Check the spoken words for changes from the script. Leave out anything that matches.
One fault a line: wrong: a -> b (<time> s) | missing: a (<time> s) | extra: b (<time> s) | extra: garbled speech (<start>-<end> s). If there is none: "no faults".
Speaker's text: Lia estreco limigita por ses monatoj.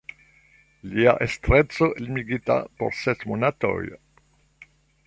no faults